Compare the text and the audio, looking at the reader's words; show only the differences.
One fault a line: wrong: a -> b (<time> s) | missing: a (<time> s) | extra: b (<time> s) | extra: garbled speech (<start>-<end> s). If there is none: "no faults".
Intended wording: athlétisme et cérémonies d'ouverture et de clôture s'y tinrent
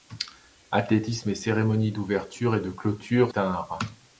missing: s'y (3.3 s)